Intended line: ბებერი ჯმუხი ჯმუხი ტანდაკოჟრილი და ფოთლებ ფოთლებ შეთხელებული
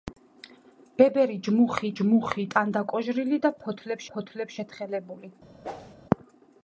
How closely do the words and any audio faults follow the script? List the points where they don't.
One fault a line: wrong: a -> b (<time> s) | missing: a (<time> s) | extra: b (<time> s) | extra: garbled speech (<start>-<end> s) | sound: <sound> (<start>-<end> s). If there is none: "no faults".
sound: whoosh (5.6-6.0 s)